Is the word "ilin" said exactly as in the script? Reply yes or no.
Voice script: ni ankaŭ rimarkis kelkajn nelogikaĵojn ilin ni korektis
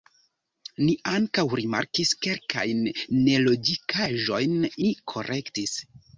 no